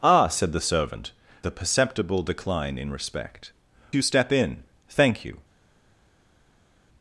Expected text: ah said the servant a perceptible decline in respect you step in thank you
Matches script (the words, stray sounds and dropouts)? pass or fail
pass